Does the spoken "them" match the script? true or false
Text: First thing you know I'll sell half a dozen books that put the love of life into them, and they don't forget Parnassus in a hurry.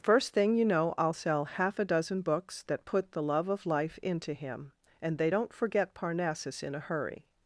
false